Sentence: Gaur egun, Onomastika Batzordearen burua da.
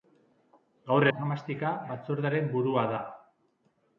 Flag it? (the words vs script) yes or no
yes